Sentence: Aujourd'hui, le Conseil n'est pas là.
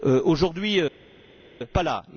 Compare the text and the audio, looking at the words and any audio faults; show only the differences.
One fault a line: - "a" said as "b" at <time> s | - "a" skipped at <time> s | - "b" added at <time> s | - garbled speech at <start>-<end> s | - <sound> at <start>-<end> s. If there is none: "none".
- "le Conseil n'est" skipped at 0.8 s